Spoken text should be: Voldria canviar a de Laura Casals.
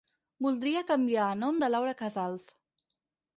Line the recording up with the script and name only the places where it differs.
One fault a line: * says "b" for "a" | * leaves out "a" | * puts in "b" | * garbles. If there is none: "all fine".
* puts in "nom"